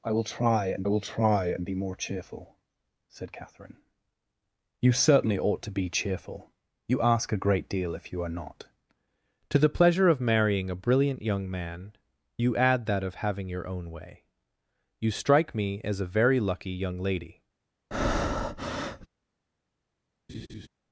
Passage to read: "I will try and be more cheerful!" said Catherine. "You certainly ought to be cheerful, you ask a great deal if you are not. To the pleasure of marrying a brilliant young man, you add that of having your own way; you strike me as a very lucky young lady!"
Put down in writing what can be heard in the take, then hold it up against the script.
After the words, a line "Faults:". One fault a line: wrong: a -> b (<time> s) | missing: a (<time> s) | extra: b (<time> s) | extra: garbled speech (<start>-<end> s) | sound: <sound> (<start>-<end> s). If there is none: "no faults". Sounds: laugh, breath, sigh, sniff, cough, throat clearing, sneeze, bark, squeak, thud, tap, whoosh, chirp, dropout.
"I will try and will try and be more cheerful!" said Catherine. "You certainly ought to be cheerful, you ask a great deal if you are not. To the pleasure of marrying a brilliant young man, you add that of having your own way; you strike me as a very lucky young lady!"
Faults:
extra: will try and (0.9 s)
sound: breath (17.9-19.1 s)
sound: laugh (20.3-20.7 s)